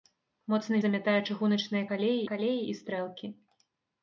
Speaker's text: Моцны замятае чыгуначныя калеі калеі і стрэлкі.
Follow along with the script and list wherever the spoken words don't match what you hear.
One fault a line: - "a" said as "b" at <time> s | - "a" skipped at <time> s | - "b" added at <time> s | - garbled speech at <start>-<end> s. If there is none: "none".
none